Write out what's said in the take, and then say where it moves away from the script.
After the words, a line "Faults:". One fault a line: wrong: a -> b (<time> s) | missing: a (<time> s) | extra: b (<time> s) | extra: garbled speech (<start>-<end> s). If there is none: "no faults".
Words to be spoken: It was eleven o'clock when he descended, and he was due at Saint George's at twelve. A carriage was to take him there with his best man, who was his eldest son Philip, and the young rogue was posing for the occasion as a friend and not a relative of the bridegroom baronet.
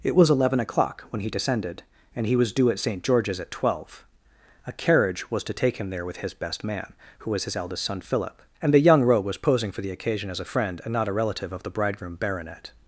It was eleven o'clock when he descended, and he was due at Saint George's at twelve. A carriage was to take him there with his best man, who was his eldest son Philip, and the young rogue was posing for the occasion as a friend and not a relative of the bridegroom baronet.
Faults:
no faults